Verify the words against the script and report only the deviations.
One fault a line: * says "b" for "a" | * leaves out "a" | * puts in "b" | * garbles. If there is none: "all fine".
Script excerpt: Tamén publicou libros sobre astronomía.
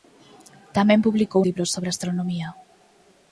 all fine